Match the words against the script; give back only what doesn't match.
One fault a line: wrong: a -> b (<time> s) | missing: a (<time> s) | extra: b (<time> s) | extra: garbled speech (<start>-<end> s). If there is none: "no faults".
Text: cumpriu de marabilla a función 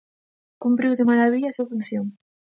extra: súa (1.5 s)